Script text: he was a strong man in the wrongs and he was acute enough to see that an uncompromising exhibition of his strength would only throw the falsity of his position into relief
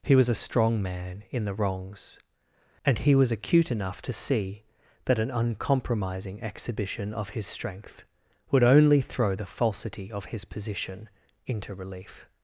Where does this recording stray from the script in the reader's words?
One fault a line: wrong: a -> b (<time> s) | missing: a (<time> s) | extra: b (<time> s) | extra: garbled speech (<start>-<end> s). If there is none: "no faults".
no faults